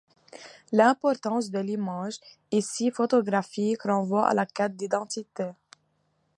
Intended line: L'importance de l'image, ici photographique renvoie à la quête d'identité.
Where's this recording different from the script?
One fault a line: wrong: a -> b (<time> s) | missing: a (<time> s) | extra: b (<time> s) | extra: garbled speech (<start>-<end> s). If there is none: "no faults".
no faults